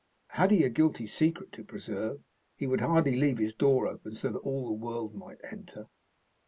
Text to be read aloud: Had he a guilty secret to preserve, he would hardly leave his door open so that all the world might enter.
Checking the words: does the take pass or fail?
pass